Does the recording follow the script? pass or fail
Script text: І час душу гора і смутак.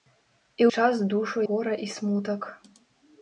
pass